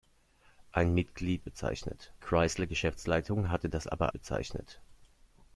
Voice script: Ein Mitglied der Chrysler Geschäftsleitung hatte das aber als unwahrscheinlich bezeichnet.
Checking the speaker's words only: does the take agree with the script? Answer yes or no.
no